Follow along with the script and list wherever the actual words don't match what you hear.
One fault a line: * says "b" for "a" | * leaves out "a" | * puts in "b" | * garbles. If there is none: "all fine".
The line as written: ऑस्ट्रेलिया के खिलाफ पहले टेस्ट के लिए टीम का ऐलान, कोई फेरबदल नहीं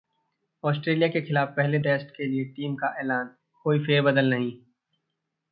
all fine